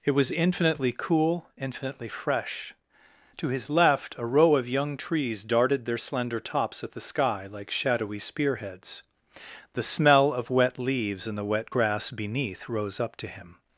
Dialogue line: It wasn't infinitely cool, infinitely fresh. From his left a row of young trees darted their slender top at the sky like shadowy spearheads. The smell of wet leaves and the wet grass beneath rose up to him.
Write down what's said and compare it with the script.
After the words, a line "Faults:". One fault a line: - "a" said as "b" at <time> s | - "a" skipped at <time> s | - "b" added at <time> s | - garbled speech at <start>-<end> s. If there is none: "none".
It was infinitely cool, infinitely fresh. To his left a row of young trees darted their slender tops at the sky like shadowy spearheads. The smell of wet leaves and the wet grass beneath rose up to him.
Faults:
- "wasn't" said as "was" at 0.1 s
- "From" said as "To" at 3.4 s
- "top" said as "tops" at 6.4 s